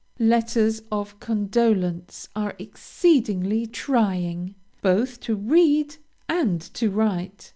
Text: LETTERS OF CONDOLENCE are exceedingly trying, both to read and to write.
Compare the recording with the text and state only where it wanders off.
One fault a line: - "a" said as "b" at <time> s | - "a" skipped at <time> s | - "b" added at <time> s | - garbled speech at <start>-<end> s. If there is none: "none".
none